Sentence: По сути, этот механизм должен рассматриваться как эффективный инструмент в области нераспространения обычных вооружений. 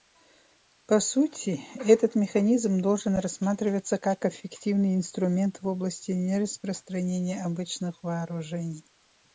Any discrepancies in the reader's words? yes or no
no